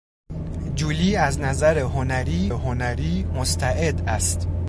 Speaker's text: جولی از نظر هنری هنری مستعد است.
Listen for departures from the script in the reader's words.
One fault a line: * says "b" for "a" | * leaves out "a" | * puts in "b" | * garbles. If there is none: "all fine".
all fine